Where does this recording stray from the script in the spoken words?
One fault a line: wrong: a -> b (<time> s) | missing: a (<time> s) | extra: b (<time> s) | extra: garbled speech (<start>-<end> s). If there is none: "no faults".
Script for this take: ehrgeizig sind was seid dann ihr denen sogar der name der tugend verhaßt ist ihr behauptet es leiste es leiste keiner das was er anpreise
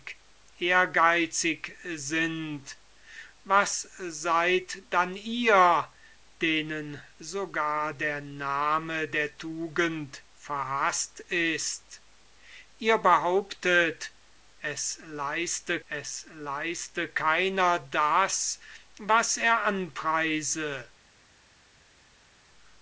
no faults